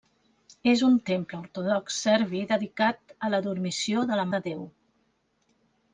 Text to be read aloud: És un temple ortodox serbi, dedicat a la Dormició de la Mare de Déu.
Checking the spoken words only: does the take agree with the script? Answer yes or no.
no